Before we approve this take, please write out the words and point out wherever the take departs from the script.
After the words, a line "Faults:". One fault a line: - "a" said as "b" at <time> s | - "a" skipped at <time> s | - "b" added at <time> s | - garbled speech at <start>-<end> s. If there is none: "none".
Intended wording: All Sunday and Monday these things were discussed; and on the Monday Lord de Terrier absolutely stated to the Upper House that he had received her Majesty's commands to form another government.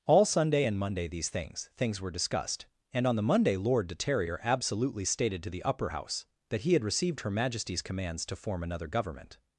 All Sunday and Monday these things things were discussed; and on the Monday Lord de Terrier absolutely stated to the Upper House that he had received her Majesty's commands to form another government.
Faults:
- "things" added at 1.8 s